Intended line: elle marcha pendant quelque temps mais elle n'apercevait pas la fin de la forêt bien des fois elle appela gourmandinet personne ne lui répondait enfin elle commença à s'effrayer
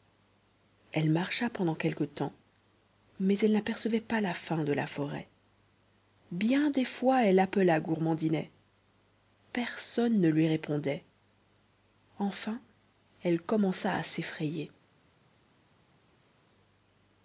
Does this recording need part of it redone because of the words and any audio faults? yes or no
no